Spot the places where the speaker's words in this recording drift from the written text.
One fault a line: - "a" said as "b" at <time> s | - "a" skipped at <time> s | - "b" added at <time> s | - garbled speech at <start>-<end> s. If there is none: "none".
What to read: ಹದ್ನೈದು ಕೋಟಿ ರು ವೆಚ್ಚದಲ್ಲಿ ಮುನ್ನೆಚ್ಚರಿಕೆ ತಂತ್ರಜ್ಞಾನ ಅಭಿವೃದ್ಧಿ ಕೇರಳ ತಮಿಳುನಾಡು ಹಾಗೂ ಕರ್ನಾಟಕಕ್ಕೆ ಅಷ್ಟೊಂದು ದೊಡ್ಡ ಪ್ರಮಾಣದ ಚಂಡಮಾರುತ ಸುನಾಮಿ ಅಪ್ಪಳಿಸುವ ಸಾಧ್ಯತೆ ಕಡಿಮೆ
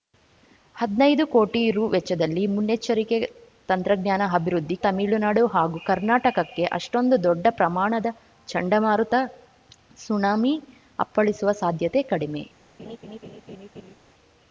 - "ಕೇರಳ" skipped at 4.8 s